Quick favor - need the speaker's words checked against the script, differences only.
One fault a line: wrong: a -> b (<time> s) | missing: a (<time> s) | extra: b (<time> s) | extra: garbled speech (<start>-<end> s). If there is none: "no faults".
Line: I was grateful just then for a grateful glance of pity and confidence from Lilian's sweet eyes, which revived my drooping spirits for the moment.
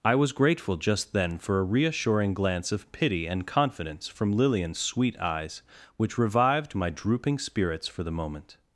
wrong: grateful -> reassuring (1.6 s)